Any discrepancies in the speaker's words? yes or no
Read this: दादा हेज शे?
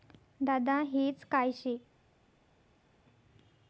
yes